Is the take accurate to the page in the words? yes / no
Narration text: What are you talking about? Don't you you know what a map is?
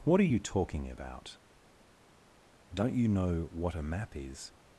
no